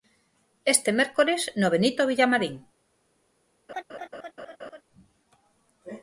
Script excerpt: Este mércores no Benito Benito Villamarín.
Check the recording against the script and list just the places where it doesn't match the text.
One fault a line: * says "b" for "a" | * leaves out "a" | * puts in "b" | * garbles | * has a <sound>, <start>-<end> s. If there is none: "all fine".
* leaves out "Benito"
* has a laugh, 3.7-4.8 s